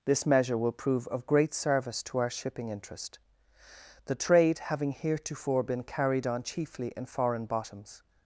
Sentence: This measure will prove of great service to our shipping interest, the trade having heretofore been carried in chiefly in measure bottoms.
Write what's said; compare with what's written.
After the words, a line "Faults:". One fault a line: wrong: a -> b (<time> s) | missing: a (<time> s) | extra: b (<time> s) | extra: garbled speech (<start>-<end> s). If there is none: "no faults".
This measure will prove of great service to our shipping interest, the trade having heretofore been carried on chiefly in foreign bottoms.
Faults:
wrong: in -> on (6.2 s)
wrong: measure -> foreign (7.0 s)